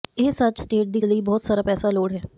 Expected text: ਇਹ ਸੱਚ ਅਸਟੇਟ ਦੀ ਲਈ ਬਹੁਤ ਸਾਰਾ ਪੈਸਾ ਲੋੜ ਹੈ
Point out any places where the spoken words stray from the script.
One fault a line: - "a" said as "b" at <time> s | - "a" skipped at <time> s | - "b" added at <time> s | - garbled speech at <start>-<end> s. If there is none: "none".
none